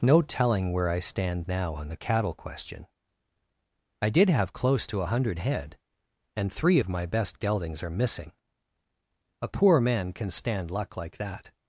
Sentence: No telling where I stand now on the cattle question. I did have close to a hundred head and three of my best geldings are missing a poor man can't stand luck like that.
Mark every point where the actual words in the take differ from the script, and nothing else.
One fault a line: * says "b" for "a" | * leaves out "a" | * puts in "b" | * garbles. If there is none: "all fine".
* says "can" for "can't"